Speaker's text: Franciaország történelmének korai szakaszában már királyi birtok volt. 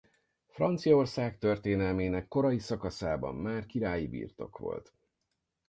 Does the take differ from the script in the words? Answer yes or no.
no